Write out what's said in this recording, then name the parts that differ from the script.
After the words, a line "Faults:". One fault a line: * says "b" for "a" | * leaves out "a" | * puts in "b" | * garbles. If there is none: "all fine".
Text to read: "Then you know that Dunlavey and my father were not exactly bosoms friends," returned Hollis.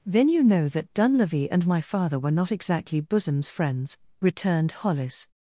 "Then you know that Dunlavey and my father were not exactly bosoms friends," returned Hollis.
Faults:
all fine